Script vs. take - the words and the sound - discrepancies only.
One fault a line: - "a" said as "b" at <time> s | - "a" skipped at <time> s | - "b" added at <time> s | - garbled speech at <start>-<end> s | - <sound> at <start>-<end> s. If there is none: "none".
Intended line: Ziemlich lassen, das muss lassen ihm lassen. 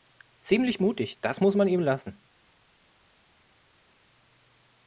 - "lassen" said as "mutig" at 0.8 s
- "lassen" said as "man" at 1.6 s